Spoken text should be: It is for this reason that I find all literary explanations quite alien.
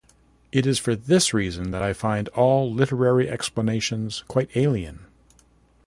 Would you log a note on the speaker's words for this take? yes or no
no